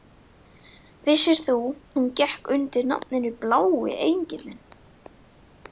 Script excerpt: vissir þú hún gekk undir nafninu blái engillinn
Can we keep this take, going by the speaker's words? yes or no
yes